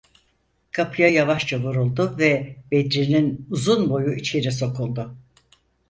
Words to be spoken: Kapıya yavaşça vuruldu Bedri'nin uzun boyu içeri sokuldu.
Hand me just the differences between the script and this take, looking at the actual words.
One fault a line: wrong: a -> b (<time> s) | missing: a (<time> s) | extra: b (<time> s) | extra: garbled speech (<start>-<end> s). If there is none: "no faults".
extra: ve (2.2 s)